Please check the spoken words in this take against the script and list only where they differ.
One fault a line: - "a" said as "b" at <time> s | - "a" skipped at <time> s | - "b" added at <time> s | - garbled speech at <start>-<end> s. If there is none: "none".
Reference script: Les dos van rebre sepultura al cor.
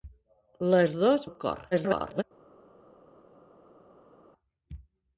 - "van rebre sepultura" skipped at 1.3 s
- garbled speech at 1.7-2.2 s